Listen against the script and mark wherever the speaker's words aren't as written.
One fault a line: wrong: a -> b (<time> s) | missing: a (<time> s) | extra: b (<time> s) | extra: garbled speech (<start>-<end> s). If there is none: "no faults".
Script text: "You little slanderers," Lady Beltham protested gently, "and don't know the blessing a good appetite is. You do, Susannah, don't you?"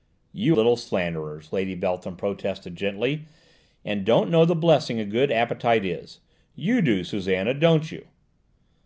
no faults